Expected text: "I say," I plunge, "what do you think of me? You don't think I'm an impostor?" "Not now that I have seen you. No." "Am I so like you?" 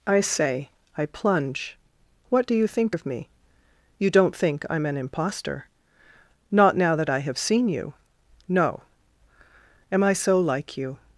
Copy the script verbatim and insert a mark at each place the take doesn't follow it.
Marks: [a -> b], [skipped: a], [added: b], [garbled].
"I say," I plunge, "what do you think of me? You don't think I'm an impostor?" "Not now that I have seen you. No." "Am I so like you?"